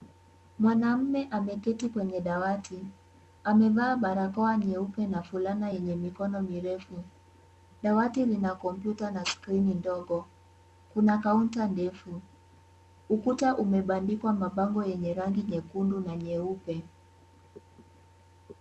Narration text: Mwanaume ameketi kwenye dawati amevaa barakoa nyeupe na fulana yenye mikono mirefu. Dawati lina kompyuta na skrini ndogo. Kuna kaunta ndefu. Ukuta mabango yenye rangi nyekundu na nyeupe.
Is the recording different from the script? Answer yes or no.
yes